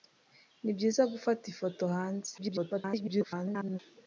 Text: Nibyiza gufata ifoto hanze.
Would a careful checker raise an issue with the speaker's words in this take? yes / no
yes